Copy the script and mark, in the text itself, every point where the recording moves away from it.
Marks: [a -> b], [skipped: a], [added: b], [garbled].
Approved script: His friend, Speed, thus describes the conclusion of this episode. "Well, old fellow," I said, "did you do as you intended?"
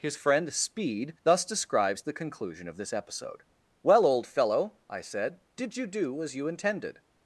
His friend, Speed, thus describes the conclusion of this episode. "Well, old fellow," I said, "did you do as you intended?"